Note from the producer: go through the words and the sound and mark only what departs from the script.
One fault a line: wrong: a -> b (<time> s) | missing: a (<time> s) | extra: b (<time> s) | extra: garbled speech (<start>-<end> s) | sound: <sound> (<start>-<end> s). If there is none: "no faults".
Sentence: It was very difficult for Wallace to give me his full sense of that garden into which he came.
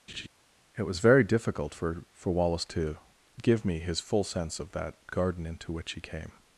sound: laugh (0.1-0.3 s)
extra: for (2.1 s)